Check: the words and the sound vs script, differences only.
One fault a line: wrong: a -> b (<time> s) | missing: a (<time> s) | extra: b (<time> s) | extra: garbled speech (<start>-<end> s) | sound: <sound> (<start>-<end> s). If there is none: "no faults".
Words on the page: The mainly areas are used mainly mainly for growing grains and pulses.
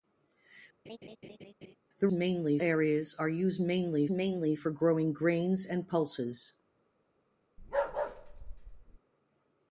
sound: laugh (0.9-1.8 s)
sound: bark (7.6-9.0 s)